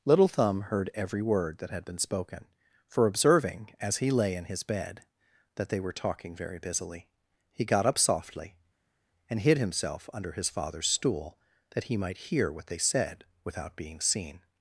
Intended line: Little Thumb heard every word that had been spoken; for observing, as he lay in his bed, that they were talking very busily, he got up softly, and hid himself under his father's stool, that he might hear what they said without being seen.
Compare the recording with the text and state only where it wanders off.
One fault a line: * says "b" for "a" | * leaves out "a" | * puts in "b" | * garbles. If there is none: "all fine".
all fine